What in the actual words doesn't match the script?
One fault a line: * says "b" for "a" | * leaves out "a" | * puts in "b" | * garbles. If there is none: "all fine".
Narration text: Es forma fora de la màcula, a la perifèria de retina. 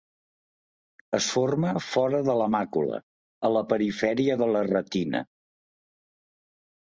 * puts in "la"